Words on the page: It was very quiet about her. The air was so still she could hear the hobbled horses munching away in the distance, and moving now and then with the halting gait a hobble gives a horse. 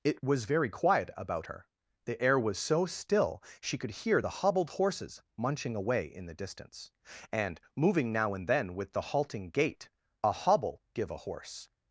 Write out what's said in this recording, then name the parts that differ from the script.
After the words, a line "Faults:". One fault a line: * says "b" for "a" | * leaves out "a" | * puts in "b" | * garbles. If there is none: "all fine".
It was very quiet about her. The air was so still she could hear the hobbled horses munching away in the distance, and moving now and then with the halting gait a hobble give a horse.
Faults:
* says "give" for "gives"